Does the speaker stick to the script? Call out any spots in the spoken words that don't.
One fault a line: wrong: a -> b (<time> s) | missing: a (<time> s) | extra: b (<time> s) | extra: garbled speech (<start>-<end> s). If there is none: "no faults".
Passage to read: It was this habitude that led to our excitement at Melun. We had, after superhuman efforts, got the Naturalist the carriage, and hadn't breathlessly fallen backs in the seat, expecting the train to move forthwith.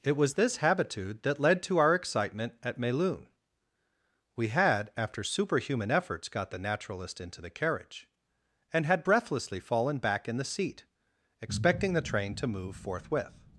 extra: into (7.2 s)
wrong: hadn't -> had (8.9 s)
wrong: backs -> back (10.0 s)